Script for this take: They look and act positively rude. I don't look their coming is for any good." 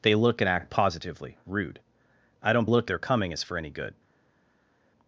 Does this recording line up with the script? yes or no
yes